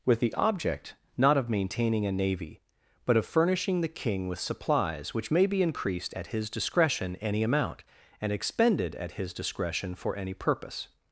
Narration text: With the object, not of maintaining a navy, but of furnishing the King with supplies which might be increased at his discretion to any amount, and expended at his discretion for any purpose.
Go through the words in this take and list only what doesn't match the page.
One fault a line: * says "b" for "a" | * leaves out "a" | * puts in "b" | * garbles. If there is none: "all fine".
* says "may" for "might"
* leaves out "to"